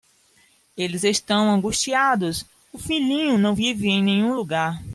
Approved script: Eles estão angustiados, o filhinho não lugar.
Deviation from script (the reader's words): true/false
true